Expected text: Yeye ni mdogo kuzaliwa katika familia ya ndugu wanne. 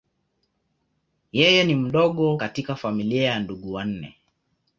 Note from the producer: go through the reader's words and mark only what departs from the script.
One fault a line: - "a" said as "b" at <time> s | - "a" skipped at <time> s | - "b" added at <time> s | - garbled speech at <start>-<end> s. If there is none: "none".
- "kuzaliwa" skipped at 2.4 s